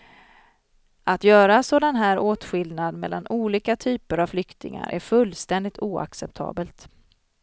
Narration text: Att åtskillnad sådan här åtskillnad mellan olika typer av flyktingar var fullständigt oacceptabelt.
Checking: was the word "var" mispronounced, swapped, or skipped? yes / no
yes